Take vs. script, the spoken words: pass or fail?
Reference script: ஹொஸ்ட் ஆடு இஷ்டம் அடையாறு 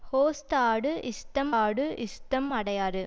fail